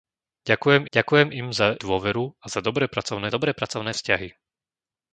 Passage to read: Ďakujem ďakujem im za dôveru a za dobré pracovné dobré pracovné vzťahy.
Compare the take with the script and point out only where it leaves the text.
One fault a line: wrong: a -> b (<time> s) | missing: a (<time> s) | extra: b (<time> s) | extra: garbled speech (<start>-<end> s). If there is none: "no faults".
no faults